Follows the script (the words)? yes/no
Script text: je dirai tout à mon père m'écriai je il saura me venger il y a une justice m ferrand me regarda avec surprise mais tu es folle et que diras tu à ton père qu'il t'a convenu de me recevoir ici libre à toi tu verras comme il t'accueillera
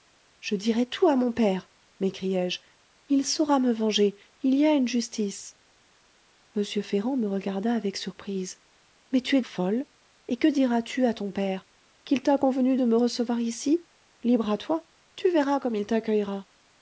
yes